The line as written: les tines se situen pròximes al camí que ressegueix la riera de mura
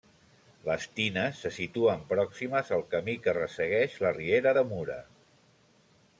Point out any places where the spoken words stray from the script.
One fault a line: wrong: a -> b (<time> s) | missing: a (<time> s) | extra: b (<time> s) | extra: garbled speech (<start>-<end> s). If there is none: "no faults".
no faults